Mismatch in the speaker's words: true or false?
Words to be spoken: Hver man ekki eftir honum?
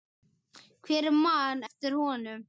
true